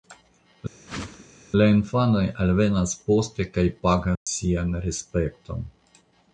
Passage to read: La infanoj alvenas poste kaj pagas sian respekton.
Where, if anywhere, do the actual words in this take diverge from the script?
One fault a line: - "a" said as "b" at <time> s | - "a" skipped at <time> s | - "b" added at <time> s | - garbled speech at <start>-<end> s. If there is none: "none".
none